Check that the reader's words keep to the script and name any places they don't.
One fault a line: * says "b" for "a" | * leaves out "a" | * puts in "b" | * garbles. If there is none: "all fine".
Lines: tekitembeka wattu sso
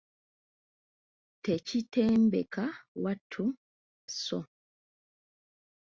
all fine